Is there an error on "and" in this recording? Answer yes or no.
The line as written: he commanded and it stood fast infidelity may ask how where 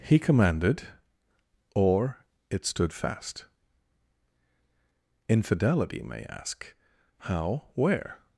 yes